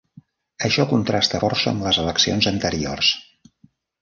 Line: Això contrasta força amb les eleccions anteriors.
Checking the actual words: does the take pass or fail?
pass